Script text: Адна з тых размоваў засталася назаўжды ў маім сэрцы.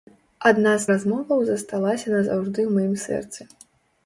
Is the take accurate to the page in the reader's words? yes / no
no